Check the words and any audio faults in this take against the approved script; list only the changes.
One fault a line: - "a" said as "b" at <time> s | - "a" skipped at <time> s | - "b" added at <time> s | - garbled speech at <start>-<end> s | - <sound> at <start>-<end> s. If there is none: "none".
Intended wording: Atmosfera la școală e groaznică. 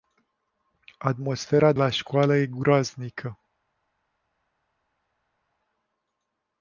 none